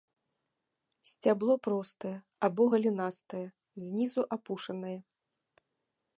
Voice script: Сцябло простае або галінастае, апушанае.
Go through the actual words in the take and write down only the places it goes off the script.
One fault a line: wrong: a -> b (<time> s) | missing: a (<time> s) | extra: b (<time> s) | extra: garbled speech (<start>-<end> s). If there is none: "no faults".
extra: знізу (3.9 s)